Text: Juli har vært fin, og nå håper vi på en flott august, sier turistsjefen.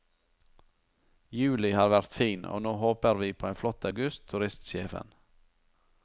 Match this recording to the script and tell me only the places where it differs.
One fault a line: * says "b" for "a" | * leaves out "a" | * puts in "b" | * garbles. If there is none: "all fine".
* leaves out "sier"